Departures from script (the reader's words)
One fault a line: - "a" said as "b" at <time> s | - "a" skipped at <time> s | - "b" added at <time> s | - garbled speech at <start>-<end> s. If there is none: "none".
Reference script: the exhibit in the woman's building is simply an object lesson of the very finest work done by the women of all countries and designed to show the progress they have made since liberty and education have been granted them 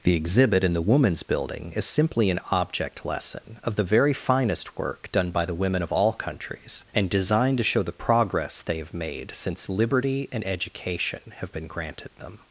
none